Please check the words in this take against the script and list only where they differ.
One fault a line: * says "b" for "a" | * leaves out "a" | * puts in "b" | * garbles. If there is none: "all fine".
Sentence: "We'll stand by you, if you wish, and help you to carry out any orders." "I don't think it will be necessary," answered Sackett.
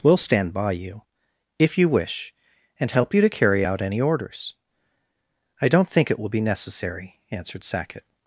all fine